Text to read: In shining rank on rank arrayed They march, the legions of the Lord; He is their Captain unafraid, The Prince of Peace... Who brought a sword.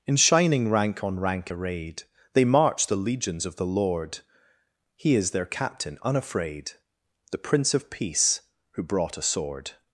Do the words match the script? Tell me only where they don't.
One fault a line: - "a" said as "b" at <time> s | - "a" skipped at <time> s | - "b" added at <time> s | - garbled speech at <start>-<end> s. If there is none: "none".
none